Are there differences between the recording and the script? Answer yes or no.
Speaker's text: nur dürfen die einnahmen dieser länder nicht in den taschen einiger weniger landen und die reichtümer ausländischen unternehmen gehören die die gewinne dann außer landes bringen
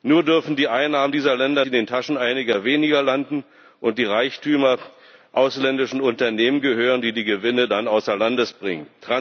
yes